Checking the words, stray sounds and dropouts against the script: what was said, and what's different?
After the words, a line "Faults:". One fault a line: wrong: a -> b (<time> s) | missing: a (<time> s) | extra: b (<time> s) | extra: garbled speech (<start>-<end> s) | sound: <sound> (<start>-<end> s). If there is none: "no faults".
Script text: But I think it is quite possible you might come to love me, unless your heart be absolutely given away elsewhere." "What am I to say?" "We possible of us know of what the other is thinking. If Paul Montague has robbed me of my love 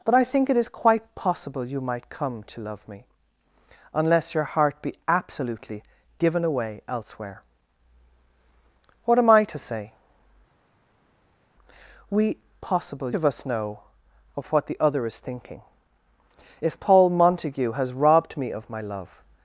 But I think it is quite possible you might come to love me, unless your heart be absolutely given away elsewhere." "What am I to say?" "We possible of us know of what the other is thinking. If Paul Montague has robbed me of my love
Faults:
no faults